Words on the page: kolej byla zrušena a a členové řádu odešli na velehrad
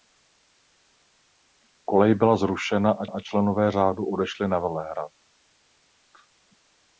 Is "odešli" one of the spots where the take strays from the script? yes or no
no